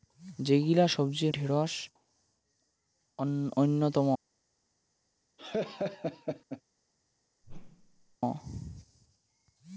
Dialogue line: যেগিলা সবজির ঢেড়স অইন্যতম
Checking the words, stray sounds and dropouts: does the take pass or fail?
fail